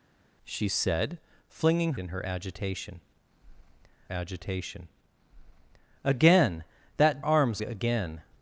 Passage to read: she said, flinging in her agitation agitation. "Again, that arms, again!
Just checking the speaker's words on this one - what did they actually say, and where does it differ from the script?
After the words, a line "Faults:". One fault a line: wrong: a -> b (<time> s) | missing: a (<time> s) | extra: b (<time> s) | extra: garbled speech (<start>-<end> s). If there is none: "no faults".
she said, flinging in her agitation agitation. "Again, that arms, again!
Faults:
no faults